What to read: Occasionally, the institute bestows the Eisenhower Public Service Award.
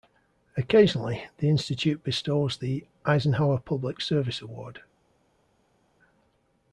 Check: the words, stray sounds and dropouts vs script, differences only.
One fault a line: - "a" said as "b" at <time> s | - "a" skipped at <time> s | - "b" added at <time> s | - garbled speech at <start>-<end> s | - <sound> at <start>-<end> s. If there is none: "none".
none